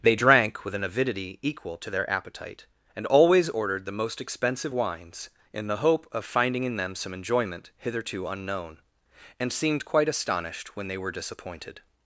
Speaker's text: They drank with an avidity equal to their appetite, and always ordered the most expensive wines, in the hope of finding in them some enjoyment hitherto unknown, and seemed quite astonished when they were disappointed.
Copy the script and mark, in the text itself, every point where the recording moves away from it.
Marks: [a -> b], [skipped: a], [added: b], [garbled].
They drank with an avidity equal to their appetite, and always ordered the most expensive wines, in the hope of finding in them some enjoyment hitherto unknown, and seemed quite astonished when they were disappointed.